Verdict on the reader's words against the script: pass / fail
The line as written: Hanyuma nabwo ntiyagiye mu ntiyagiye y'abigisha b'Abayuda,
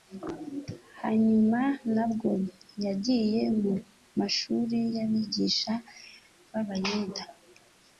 fail